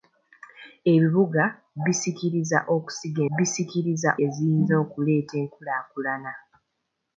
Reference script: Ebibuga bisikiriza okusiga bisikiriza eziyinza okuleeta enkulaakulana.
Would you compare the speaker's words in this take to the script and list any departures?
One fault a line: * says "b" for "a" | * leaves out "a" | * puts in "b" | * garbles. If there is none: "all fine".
all fine